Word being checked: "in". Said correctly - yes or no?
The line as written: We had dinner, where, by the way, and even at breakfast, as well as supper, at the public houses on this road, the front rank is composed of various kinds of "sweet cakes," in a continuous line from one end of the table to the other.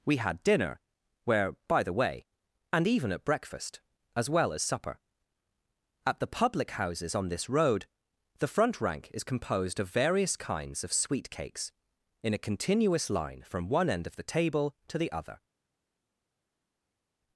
yes